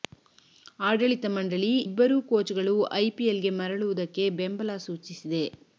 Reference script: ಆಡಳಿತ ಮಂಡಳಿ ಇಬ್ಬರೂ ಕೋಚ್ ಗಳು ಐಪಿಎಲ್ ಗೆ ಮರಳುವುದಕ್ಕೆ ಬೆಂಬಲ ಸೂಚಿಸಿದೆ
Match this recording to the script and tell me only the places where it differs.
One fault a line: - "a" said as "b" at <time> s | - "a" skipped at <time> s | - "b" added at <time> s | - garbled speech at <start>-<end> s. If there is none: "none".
none